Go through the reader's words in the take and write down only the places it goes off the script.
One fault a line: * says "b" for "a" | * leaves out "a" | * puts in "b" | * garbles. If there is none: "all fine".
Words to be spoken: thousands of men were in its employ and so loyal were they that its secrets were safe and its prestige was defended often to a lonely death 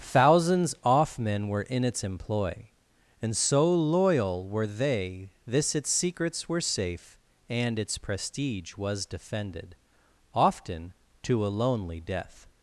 * says "off" for "of"
* says "this" for "that"